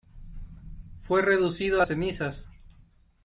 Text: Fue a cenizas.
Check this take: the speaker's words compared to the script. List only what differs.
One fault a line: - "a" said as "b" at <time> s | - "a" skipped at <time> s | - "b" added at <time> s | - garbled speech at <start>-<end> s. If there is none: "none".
- "reducido" added at 1.2 s